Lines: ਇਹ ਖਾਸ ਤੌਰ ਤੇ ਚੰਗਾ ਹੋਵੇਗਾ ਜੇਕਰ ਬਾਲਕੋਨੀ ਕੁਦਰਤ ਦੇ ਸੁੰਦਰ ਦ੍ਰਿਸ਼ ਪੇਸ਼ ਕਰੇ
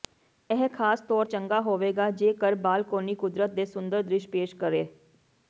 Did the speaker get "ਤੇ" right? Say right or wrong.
wrong